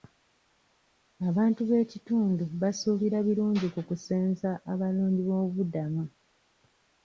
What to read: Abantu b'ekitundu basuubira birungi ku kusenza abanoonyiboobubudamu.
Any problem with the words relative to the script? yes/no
no